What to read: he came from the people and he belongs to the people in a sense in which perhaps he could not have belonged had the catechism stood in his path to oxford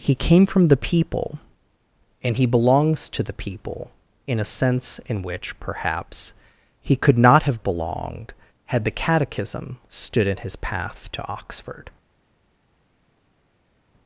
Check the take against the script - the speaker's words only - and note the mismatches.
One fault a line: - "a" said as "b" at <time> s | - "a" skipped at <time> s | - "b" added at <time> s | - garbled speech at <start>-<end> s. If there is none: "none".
none